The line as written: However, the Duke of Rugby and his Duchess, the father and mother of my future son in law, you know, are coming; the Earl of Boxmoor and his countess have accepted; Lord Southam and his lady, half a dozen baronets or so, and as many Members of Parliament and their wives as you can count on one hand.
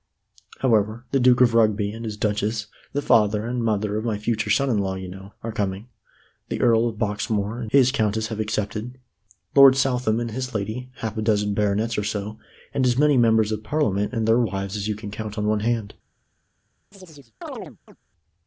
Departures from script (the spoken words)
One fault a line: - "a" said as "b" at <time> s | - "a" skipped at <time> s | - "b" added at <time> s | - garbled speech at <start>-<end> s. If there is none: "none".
none